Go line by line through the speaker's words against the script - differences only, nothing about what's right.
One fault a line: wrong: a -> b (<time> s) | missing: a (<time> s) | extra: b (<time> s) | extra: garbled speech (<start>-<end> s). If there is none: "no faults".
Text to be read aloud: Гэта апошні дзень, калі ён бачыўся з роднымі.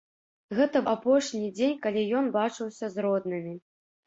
no faults